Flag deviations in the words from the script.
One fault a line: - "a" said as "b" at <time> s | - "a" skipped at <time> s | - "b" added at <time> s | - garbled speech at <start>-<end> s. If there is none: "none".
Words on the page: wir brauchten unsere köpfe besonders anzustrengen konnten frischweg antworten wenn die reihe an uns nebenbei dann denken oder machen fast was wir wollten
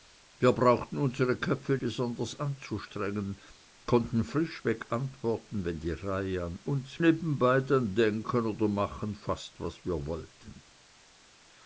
none